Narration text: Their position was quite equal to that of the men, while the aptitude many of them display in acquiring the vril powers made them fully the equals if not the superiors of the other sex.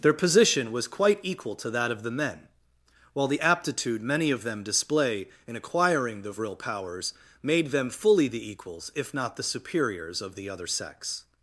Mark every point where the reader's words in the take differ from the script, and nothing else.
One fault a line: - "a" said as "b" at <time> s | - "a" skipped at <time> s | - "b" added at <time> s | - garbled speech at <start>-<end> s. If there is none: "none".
none